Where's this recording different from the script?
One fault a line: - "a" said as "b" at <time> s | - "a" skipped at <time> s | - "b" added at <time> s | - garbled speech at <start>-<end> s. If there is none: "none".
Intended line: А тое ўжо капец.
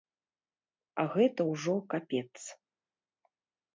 - "тое" said as "гэта" at 1.1 s